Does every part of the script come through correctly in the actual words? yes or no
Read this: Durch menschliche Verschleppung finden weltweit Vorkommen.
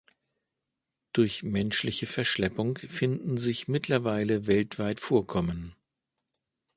no